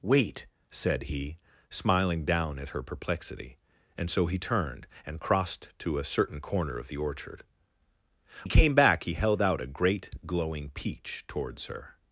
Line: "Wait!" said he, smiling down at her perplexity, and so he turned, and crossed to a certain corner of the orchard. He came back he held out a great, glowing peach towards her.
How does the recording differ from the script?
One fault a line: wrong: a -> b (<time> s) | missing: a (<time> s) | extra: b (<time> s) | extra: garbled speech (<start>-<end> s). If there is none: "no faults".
no faults